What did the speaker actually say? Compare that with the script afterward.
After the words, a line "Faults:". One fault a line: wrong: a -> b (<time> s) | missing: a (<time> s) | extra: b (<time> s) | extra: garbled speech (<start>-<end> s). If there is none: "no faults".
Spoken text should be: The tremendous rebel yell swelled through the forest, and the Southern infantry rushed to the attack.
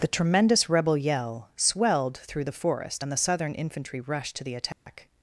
The tremendous rebel yell swelled through the forest, and the Southern infantry rushed to the attack.
Faults:
no faults